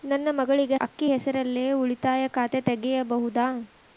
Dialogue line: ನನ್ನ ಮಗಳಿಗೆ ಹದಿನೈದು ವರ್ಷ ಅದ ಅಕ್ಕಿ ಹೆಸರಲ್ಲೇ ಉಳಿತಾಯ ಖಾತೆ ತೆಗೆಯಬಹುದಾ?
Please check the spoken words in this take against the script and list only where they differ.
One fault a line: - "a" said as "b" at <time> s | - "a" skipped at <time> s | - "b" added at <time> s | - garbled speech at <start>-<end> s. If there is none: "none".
- "ಹದಿನೈದು ವರ್ಷ ಅದ" skipped at 0.8 s